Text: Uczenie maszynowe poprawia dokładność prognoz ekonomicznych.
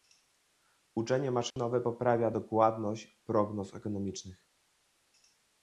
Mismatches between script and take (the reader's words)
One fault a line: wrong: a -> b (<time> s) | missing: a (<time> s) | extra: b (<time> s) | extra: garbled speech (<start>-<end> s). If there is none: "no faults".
no faults